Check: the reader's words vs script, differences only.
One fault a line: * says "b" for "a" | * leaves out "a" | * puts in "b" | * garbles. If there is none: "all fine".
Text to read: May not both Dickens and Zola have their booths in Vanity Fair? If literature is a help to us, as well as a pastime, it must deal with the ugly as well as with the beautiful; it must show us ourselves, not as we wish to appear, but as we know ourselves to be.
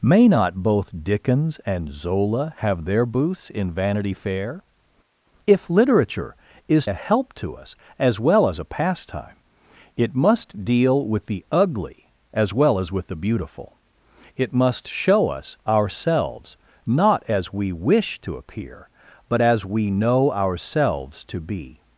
all fine